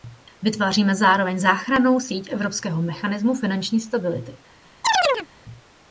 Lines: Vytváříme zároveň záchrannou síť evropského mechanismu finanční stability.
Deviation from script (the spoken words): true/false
false